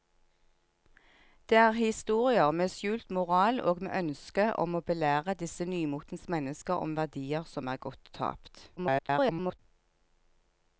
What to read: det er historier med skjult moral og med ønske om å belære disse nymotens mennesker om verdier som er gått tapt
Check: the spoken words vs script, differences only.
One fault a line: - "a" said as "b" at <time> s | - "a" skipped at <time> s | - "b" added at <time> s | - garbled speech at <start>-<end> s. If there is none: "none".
- garbled speech at 8.8-9.6 s